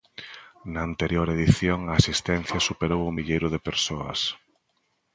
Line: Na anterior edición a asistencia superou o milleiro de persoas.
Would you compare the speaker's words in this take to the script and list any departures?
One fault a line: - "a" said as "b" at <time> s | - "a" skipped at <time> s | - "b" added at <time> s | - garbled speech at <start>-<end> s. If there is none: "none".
none